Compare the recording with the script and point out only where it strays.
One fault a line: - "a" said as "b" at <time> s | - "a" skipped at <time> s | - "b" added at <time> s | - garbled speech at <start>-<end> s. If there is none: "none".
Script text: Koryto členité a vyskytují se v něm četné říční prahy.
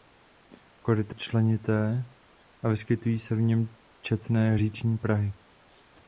none